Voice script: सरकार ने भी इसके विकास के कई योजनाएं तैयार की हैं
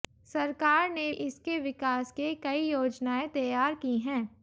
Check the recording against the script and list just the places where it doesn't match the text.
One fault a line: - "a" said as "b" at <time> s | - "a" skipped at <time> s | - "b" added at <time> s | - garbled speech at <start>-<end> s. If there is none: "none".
- "भी" skipped at 1.1 s